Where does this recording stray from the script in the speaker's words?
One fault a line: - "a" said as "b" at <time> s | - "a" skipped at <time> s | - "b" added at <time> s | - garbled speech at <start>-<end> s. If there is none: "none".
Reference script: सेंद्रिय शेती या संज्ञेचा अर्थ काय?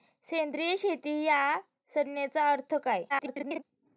- garbled speech at 3.1-3.6 s